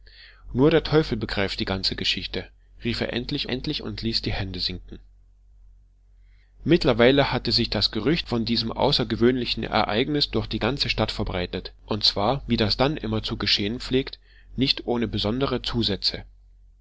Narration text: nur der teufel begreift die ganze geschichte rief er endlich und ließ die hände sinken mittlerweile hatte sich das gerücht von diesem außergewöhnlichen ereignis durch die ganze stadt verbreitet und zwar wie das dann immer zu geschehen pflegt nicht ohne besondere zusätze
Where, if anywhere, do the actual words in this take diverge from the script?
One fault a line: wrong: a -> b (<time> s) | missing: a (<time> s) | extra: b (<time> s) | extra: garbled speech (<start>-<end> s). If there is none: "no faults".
extra: endlich (3.5 s)